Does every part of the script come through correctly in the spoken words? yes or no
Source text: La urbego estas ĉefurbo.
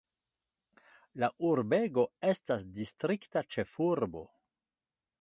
no